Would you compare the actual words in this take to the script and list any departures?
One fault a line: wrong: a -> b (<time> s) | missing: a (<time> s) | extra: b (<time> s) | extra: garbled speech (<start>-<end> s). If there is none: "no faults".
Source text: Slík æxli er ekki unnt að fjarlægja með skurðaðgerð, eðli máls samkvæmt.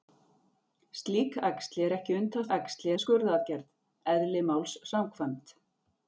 wrong: fjarlægja -> æxli (2.6 s)